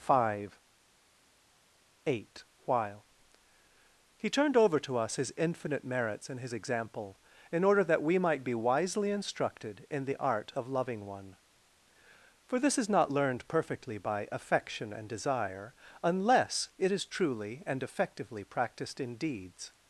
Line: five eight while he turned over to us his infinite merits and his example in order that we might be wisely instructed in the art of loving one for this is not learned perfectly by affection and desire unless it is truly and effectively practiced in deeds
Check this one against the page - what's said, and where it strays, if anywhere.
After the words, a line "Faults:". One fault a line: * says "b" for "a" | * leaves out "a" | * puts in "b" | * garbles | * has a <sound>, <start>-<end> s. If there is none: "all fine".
five eight while he turned over to us his infinite merits and his example in order that we might be wisely instructed in the art of loving one for this is not learned perfectly by affection and desire unless it is truly and effectively practiced in deeds
Faults:
all fine